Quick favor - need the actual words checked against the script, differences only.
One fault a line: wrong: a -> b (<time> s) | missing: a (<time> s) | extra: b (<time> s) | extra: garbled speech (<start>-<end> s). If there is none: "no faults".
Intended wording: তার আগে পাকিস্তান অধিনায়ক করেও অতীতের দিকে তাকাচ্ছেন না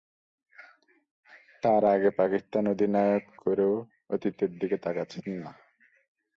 no faults